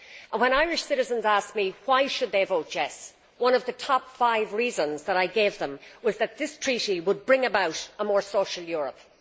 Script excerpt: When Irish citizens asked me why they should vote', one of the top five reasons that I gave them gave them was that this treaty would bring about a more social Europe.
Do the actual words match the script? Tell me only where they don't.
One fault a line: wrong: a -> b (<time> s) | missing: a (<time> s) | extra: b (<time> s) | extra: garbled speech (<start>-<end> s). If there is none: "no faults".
extra: yes (2.7 s)
missing: gave them (5.8 s)